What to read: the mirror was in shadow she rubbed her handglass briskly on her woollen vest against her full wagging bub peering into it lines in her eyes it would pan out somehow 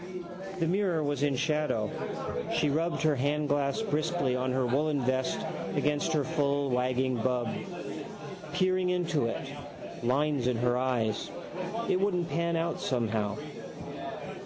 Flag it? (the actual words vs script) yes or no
yes